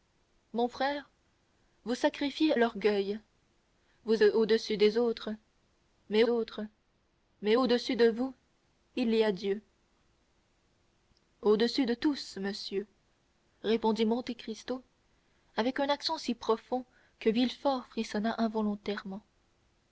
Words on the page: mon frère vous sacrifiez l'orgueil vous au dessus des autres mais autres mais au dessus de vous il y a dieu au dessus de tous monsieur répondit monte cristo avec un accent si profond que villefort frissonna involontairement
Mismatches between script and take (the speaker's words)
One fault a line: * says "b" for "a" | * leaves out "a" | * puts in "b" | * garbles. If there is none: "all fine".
all fine